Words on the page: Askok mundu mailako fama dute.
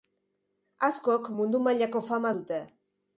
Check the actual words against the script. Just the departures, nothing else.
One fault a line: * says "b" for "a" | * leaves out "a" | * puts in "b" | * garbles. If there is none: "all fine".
all fine